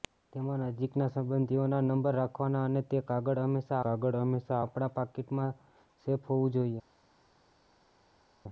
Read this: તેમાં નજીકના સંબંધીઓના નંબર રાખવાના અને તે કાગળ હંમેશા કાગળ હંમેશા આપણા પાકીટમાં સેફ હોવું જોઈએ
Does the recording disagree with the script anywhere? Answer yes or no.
no